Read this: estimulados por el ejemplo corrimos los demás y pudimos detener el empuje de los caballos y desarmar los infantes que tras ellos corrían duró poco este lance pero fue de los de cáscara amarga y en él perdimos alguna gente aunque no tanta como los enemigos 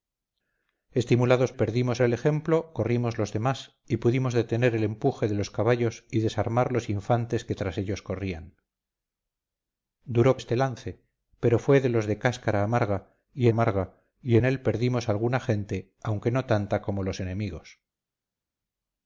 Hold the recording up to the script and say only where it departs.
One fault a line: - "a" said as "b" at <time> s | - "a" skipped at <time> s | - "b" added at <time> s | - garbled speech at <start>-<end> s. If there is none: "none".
- "por" said as "perdimos" at 1.5 s
- "poco" skipped at 10.4 s
- "amarga y" added at 13.5 s